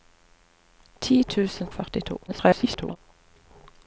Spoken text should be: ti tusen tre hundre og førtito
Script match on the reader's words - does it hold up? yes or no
no